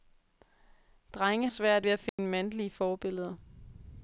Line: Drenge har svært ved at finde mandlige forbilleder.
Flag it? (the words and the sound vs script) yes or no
yes